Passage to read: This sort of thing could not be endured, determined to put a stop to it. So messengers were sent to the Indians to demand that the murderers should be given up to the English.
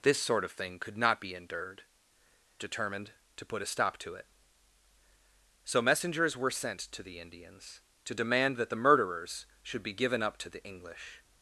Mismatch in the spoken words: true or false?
false